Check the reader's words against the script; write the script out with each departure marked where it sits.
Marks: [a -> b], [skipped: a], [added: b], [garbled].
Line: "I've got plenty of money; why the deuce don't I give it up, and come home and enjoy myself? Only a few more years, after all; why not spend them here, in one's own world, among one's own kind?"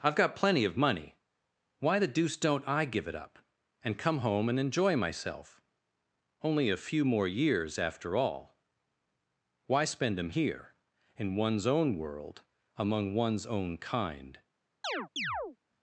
"I've got plenty of money; why the deuce don't I give it up, and come home and enjoy myself? Only a few more years, after all; why [skipped: not] spend them here, in one's own world, among one's own kind?"